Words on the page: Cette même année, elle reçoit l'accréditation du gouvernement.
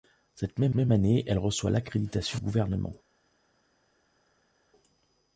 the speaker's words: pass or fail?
fail